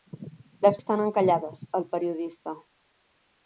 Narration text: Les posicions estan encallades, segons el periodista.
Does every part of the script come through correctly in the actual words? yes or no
no